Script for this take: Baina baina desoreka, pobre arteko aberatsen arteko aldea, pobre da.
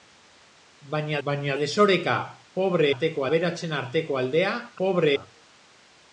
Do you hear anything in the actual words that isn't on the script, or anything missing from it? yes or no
no